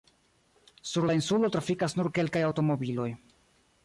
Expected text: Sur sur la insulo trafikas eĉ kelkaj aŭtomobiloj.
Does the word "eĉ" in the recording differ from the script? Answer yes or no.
yes